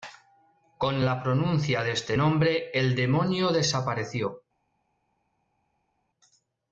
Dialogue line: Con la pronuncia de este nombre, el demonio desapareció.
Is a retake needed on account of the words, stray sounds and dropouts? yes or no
no